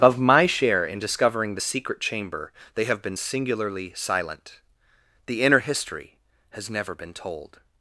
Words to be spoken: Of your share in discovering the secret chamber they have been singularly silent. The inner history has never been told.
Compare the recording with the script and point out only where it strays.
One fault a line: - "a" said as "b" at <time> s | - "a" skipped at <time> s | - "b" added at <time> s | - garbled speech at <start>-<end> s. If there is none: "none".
- "your" said as "my" at 0.2 s